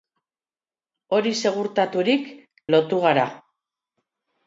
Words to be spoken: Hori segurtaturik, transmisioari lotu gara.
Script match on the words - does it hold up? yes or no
no